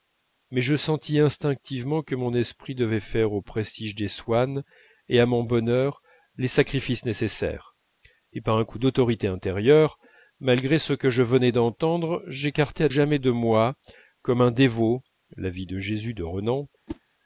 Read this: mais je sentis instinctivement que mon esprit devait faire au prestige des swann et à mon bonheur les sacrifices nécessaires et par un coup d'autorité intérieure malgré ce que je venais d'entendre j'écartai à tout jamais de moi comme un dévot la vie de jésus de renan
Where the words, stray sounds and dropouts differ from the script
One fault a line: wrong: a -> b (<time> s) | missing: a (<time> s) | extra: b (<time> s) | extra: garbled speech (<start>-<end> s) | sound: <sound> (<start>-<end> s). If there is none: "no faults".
missing: tout (12.9 s)
sound: whoosh (16.9-17.0 s)